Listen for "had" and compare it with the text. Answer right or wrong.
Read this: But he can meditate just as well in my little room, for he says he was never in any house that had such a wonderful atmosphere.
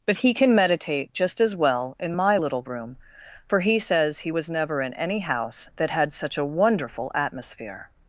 right